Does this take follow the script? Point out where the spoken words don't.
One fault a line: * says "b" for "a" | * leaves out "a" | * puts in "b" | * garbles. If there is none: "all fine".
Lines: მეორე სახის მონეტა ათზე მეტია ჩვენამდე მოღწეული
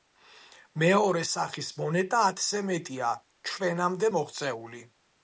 all fine